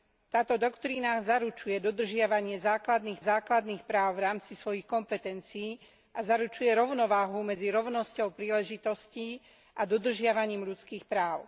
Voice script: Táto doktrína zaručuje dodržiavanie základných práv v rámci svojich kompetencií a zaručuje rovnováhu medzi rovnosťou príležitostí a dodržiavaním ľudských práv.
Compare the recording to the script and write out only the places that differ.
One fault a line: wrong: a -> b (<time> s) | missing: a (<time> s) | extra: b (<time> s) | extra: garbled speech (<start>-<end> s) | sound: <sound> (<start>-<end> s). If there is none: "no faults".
extra: základných (3.2 s)